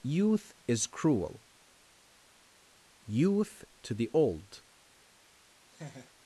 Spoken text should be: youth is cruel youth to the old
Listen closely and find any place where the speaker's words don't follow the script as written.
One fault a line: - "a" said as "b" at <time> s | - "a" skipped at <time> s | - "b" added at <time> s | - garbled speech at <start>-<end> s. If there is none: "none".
none